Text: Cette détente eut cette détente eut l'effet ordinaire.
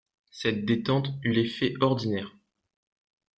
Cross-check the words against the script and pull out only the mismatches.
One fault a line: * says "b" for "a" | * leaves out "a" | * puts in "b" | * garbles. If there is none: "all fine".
* leaves out "cette détente eut"